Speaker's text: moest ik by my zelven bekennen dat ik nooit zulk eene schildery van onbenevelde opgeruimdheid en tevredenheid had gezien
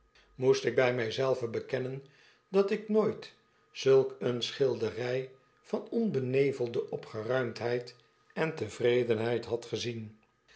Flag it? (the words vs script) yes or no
no